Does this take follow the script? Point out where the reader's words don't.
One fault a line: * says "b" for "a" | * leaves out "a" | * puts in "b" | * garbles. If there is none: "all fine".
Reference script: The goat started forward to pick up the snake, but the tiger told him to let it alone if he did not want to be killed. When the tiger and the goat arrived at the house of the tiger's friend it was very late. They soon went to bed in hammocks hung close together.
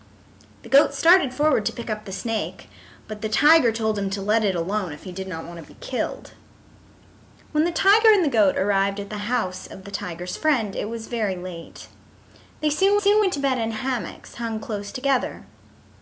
* puts in "soon"